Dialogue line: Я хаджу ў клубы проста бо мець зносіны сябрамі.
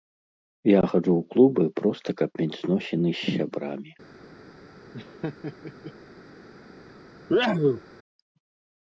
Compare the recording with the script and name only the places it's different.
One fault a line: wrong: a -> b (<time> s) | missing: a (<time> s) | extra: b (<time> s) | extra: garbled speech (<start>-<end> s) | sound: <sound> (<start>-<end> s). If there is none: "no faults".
wrong: бо -> каб (2.2 s)
extra: з (3.2 s)
sound: laugh (4.9-5.9 s)
sound: sneeze (7.3-7.8 s)